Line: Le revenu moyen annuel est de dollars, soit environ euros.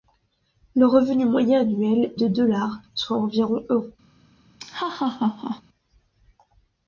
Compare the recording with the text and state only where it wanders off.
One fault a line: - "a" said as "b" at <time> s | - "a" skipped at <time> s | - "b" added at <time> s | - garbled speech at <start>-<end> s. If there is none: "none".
- "est" skipped at 2.1 s